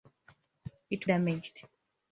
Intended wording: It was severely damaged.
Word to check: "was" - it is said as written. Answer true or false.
false